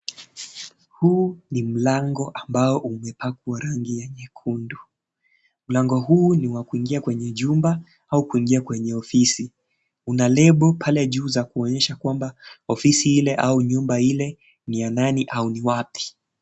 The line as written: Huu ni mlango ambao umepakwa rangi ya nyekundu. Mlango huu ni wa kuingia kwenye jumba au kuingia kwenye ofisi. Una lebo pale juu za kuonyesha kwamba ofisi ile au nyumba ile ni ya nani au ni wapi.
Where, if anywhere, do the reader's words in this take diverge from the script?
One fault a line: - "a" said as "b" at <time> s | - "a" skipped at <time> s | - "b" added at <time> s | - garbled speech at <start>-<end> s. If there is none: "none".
none